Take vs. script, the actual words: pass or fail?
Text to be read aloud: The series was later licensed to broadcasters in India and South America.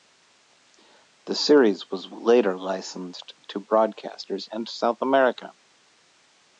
fail